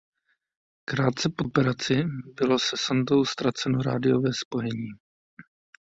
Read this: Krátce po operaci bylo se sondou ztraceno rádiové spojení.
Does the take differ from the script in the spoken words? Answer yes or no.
no